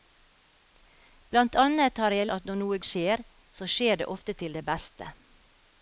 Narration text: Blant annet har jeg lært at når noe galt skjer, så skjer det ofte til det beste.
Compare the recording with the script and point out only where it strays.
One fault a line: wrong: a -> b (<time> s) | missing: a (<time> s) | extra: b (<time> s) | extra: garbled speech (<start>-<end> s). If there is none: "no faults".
missing: lært (2.3 s)
missing: galt (2.8 s)